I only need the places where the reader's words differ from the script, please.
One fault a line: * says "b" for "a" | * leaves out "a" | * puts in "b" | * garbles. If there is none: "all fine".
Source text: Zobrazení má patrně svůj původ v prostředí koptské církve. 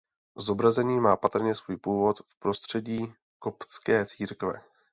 all fine